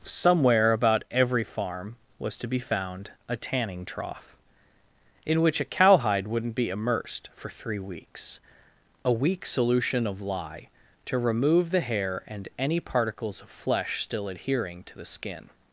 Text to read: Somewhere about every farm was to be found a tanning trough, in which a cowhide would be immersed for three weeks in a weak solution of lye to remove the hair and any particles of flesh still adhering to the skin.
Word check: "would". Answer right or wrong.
wrong